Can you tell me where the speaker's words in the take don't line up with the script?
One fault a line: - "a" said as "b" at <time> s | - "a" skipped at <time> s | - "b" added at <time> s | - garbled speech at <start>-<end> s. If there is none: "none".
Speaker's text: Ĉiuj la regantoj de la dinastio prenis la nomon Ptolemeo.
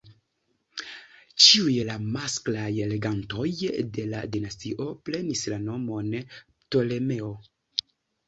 - "masklaj" added at 2.2 s